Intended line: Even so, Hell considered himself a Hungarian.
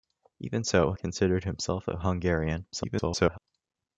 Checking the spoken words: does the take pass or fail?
fail